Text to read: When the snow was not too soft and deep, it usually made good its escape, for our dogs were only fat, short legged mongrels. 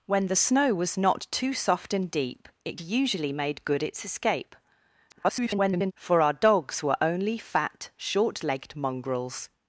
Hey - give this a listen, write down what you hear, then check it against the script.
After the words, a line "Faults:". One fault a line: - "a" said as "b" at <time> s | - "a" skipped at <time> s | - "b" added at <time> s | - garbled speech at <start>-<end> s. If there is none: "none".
When the snow was not too soft and deep, it usually made good its escape, [garbled] for our dogs were only fat, short legged mongrels.
Faults:
- garbled speech at 5.1-5.9 s